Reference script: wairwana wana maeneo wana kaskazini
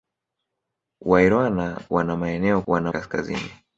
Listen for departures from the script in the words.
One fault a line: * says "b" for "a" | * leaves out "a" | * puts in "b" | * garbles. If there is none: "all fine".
all fine